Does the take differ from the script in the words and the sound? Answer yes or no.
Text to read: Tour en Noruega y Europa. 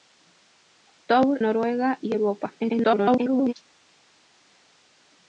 yes